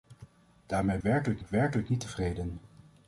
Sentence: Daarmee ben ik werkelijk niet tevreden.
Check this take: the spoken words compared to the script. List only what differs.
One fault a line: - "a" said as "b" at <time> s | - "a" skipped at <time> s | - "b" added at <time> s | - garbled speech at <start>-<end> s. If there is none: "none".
- "ben" said as "werkelijk" at 1.0 s